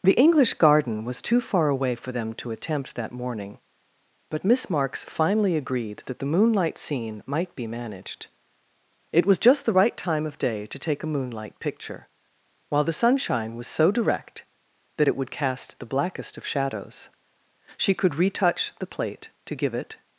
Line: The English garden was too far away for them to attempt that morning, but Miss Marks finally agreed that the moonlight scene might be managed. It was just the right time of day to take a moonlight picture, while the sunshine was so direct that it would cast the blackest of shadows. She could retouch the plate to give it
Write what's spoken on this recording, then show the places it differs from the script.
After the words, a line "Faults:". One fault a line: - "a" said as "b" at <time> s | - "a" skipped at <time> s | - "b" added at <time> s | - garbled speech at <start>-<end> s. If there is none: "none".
The English garden was too far away for them to attempt that morning, but Miss Marks finally agreed that the moonlight scene might be managed. It was just the right time of day to take a moonlight picture, while the sunshine was so direct that it would cast the blackest of shadows. She could retouch the plate to give it
Faults:
none